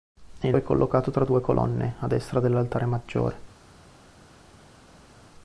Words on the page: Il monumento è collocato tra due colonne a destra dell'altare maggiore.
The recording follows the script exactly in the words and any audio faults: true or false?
false